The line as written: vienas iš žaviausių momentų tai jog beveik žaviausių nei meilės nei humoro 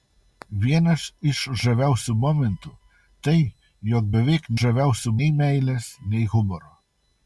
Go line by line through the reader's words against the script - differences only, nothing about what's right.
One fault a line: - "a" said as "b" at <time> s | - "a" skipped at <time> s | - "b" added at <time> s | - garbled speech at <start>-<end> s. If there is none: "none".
none